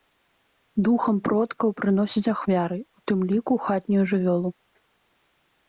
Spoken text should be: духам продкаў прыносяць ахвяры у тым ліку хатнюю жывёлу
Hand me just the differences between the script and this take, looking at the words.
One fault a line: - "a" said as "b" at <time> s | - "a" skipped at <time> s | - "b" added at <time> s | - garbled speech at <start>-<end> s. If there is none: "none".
none